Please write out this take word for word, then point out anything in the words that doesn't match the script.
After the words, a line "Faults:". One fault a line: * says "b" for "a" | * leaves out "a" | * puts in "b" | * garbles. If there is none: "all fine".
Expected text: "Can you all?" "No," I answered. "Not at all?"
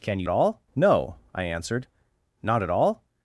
"Can you all?" "No," I answered. "Not at all?"
Faults:
all fine